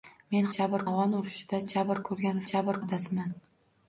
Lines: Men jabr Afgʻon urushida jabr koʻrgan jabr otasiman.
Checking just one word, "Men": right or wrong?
right